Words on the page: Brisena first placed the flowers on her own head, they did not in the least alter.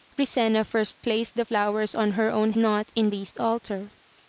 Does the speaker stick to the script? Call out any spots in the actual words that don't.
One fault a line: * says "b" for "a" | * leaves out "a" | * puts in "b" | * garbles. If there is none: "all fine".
* leaves out "head they did"
* leaves out "the"